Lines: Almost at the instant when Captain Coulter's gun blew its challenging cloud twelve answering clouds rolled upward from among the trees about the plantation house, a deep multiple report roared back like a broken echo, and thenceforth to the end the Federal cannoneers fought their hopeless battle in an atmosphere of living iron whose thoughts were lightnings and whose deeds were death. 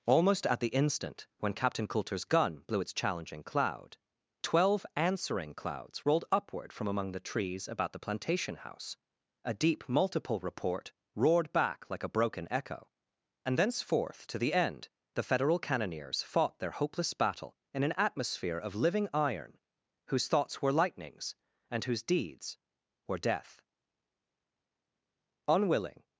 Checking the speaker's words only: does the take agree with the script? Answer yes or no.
no